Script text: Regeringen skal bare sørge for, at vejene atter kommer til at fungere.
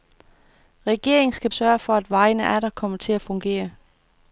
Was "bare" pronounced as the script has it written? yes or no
no